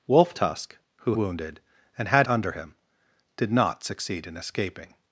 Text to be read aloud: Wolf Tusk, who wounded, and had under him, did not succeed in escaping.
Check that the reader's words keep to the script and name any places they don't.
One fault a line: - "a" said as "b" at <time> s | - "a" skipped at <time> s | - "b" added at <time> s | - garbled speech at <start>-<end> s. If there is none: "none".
none